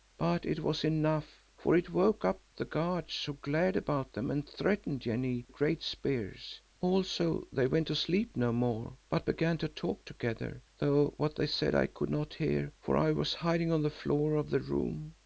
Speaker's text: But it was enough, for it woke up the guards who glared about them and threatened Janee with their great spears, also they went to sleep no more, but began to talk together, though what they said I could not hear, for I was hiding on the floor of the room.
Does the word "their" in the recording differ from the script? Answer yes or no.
yes